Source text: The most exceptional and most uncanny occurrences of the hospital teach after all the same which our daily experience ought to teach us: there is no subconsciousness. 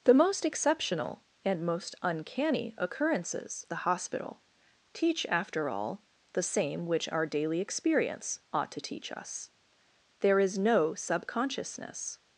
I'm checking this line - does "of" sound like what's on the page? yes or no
no